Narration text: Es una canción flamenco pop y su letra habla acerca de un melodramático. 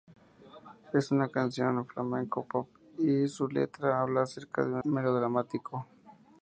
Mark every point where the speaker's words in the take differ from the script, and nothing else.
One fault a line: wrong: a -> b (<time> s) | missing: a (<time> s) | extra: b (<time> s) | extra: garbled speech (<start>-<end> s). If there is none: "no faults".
no faults